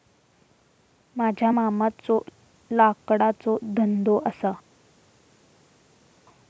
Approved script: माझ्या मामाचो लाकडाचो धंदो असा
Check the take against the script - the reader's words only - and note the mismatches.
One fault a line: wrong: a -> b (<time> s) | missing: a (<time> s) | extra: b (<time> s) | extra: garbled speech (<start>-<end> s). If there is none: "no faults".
no faults